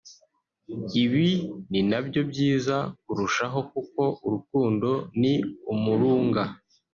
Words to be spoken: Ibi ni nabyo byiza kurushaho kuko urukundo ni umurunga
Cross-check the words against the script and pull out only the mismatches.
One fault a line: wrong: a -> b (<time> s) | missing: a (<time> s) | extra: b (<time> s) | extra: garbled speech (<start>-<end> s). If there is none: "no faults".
no faults